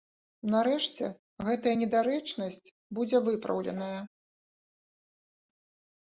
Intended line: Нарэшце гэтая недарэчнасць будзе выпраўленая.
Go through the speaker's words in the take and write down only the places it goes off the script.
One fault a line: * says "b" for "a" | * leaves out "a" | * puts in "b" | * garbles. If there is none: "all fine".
all fine